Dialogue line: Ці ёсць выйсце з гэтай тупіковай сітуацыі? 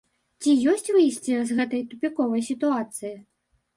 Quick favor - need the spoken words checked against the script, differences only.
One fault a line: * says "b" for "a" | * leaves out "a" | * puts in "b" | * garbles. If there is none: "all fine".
all fine